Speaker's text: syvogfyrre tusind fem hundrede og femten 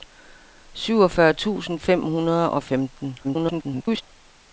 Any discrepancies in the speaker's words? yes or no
yes